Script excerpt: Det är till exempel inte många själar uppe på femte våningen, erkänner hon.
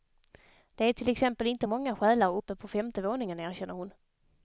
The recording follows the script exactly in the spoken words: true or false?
true